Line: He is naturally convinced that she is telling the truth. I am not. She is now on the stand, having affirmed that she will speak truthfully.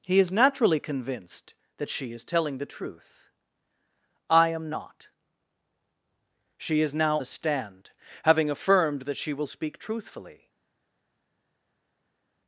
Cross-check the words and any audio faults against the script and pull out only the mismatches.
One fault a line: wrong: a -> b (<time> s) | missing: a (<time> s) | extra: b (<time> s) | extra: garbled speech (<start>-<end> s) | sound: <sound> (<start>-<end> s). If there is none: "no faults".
missing: on (7.2 s)